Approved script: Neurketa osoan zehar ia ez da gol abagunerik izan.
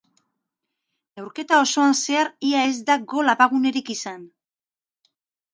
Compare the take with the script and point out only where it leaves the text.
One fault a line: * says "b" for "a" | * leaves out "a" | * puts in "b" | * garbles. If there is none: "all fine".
all fine